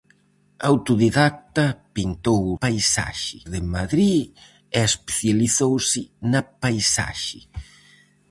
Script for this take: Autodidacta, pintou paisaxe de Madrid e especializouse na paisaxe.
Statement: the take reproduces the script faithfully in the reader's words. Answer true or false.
true